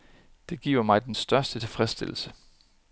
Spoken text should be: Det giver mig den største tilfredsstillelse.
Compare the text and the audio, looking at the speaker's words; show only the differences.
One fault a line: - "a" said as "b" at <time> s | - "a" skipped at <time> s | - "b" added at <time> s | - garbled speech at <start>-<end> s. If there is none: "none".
none